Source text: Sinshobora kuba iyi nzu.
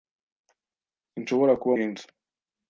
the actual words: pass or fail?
pass